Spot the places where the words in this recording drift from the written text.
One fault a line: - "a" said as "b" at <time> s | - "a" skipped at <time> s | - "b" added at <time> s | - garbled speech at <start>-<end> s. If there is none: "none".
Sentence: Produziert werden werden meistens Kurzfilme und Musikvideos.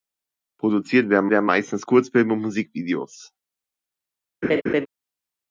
none